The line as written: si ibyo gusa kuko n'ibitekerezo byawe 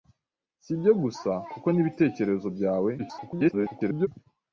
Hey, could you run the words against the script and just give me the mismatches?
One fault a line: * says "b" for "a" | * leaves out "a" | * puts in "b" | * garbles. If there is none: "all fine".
* garbles